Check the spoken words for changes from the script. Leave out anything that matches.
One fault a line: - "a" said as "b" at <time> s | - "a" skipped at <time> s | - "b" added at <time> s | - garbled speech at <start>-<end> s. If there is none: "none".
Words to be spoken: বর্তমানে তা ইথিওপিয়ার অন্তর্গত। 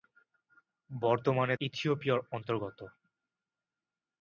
- "তা" skipped at 1.6 s